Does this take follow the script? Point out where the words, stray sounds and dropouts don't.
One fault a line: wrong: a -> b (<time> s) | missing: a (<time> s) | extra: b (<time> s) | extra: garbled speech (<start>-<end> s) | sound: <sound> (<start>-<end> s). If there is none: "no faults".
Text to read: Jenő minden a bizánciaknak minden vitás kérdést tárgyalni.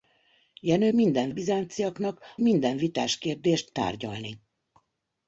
no faults